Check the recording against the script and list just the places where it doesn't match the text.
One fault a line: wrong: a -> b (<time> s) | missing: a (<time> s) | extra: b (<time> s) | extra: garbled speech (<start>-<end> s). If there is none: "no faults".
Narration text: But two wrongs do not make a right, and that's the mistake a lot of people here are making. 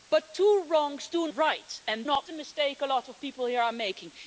missing: not make a (1.3 s)
wrong: that's -> not (2.0 s)